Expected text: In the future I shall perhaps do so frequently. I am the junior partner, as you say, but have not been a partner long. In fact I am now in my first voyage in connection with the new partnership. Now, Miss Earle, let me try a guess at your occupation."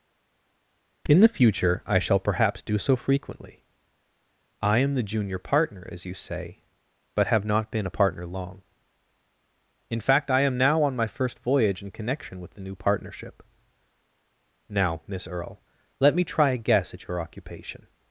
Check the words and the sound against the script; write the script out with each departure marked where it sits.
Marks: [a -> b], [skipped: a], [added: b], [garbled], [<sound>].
In the future I shall perhaps do so frequently. I am the junior partner, as you say, but have not been a partner long. In fact I am now [in -> on] my first voyage in connection with the new partnership. Now, Miss Earle, let me try a guess at your occupation."